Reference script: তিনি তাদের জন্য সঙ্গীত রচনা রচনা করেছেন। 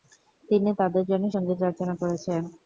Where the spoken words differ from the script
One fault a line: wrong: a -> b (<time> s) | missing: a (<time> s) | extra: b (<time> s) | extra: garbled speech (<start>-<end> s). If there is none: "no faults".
missing: রচনা (1.9 s)